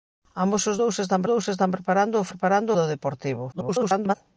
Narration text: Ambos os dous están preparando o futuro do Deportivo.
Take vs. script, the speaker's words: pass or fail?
fail